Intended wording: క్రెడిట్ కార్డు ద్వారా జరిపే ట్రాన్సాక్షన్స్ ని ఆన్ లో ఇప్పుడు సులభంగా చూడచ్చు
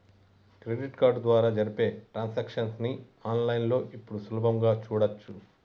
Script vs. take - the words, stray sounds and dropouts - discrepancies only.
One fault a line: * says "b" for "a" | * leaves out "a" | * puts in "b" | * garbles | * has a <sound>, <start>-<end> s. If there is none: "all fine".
* puts in "లైన్"